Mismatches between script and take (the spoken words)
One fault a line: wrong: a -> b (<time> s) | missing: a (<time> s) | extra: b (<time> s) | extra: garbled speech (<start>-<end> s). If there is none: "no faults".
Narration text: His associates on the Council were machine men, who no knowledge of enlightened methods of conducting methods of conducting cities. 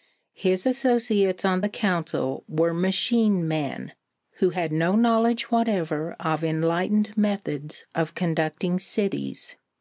extra: had (4.5 s)
extra: whatever (5.5 s)
missing: methods of conducting (8.8 s)